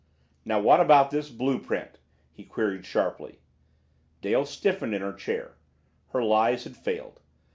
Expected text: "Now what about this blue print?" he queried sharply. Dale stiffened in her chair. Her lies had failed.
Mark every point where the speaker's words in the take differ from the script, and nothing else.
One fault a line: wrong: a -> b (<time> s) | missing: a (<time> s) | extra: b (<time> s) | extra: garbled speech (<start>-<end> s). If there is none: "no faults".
no faults